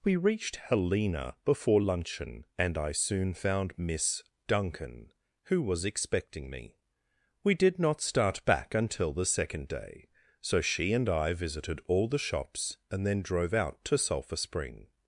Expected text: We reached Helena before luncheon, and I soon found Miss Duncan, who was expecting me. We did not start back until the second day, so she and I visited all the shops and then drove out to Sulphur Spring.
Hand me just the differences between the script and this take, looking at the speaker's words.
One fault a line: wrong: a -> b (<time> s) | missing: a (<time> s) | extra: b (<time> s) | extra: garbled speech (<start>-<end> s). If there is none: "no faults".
no faults